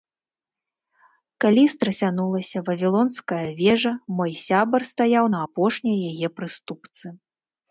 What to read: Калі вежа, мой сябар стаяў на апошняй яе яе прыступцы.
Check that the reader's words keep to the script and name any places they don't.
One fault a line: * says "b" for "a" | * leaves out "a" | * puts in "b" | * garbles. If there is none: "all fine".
* puts in "страсянулася Вавілонская"
* leaves out "яе"